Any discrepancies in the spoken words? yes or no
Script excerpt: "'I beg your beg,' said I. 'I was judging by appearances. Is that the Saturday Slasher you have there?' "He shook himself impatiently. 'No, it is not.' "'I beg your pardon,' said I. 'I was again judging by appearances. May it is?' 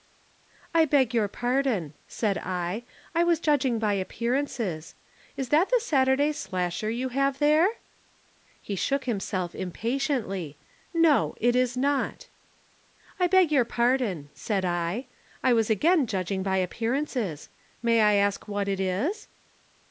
yes